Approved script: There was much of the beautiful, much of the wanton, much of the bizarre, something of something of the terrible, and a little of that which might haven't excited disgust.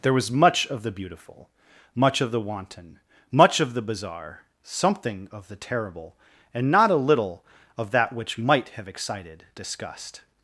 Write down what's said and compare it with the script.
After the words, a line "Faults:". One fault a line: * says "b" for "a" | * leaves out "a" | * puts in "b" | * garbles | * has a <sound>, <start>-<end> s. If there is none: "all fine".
There was much of the beautiful, much of the wanton, much of the bizarre, something of the terrible, and not a little of that which might have excited disgust.
Faults:
* leaves out "something of"
* puts in "not"
* says "have" for "haven't"